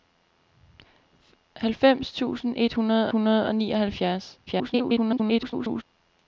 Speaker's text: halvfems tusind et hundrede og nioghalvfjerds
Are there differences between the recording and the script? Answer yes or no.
yes